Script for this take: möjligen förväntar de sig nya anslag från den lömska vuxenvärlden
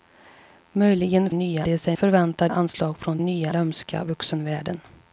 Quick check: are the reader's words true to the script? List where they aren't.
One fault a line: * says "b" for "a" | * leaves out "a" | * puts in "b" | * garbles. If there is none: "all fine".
* says "nya" for "förväntar"
* says "förväntar" for "nya"
* says "nya" for "den"